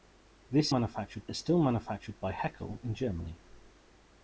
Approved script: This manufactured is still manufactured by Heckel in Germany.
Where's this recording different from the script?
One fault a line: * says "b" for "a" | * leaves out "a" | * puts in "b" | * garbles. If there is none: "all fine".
all fine